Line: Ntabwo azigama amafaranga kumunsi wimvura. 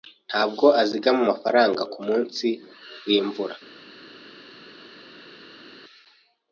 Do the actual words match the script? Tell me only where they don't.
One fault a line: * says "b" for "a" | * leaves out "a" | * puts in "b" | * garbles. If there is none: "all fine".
all fine